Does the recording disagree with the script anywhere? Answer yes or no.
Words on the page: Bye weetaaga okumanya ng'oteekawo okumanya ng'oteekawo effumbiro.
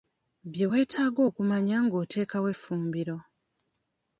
yes